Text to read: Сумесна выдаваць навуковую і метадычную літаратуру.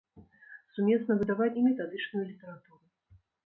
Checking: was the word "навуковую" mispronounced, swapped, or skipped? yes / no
yes